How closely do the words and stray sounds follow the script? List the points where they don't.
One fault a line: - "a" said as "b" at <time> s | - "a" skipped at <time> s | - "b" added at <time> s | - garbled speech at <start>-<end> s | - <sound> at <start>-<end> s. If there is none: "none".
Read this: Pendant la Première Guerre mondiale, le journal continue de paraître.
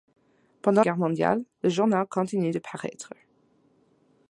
- "la Première" skipped at 0.8 s